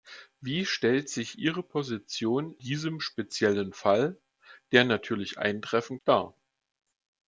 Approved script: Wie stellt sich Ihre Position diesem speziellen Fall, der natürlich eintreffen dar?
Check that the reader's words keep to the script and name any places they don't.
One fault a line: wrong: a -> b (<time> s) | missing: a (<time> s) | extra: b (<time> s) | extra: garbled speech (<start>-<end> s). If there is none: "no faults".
no faults